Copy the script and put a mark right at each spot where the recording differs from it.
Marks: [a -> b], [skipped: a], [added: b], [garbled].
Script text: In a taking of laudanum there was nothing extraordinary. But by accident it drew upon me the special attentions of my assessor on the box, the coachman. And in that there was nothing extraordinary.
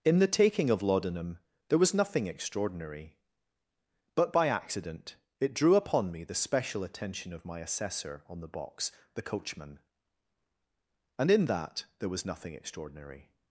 In [a -> the] taking of laudanum there was nothing extraordinary. But by accident it drew upon me the special [attentions -> attention] of my assessor on the box, the coachman. And in that there was nothing extraordinary.